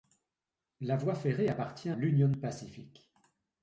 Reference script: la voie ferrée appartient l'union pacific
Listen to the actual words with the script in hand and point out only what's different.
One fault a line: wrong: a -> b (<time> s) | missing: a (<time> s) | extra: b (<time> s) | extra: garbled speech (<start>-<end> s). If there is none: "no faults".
no faults